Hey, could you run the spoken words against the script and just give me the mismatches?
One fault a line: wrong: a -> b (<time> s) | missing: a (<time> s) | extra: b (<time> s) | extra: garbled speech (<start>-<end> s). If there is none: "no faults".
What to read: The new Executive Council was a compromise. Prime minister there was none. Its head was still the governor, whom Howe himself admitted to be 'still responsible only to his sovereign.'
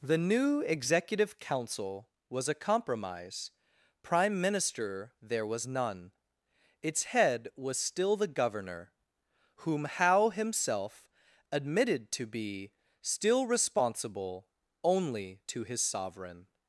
no faults